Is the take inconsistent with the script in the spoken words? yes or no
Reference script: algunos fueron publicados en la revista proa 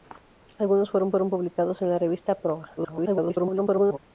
yes